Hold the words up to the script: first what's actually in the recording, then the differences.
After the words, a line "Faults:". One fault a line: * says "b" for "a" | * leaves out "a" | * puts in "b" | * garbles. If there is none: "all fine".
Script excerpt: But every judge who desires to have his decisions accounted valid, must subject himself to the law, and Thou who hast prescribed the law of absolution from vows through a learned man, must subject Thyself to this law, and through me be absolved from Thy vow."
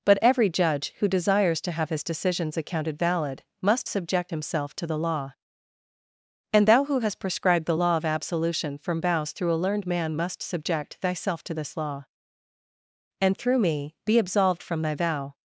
But every judge who desires to have his decisions accounted valid, must subject himself to the law, and Thou who hast prescribed the law of absolution from vows through a learned man, must subject Thyself to this law, and through me be absolved from Thy vow."
Faults:
all fine